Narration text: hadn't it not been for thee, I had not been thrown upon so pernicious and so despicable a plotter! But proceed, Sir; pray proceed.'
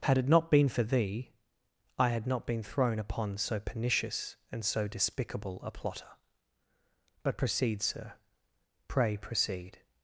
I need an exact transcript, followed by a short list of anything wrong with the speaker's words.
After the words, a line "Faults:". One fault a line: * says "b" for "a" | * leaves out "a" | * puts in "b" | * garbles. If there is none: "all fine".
had it not been for thee, I had not been thrown upon so pernicious and so despicable a plotter! But proceed, Sir; pray proceed.'
Faults:
* says "had" for "hadn't"